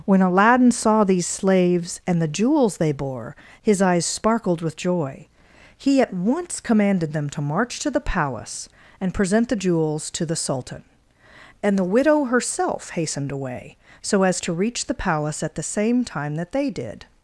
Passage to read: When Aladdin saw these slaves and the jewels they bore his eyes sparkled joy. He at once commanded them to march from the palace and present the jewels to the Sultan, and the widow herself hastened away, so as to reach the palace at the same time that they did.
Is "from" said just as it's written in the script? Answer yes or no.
no